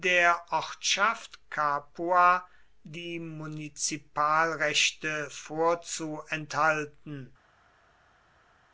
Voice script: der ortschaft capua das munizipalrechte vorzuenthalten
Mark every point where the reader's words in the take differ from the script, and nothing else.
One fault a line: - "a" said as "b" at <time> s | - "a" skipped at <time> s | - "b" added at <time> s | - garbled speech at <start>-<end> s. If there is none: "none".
- "das" said as "die" at 2.8 s